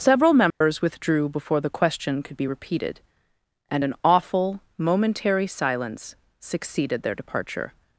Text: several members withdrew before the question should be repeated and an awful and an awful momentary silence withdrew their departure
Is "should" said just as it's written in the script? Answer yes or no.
no